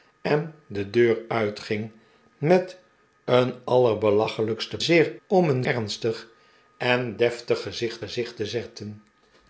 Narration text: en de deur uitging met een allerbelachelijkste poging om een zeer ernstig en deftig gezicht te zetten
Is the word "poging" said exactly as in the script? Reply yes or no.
no